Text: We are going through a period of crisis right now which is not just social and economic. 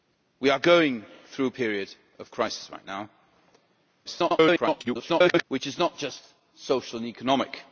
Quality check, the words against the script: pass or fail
fail